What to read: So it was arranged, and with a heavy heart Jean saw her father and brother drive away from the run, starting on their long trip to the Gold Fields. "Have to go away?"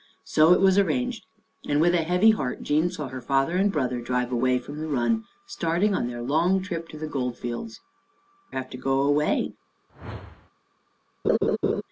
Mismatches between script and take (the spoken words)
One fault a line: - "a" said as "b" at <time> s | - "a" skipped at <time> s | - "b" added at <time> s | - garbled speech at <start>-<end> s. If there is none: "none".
none